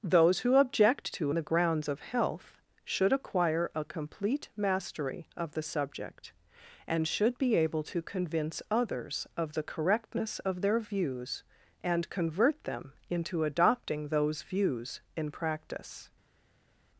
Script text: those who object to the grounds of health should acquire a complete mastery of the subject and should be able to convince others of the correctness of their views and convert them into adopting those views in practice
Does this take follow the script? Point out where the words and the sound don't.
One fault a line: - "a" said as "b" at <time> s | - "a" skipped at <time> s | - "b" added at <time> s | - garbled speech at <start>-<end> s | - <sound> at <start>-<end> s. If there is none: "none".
none